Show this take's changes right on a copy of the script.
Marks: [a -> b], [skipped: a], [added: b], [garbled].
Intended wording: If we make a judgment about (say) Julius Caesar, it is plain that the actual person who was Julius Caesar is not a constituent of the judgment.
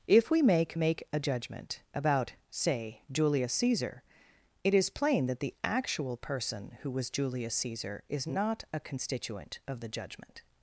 If we make [added: make] a judgment about (say) Julius Caesar, it is plain that the actual person who was Julius Caesar is not a constituent of the judgment.